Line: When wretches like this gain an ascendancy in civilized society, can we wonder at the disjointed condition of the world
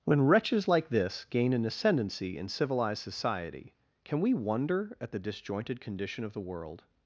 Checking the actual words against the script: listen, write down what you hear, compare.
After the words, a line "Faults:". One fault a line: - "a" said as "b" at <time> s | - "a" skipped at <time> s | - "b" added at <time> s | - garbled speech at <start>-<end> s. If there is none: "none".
When wretches like this gain an ascendancy in civilized society, can we wonder at the disjointed condition of the world
Faults:
none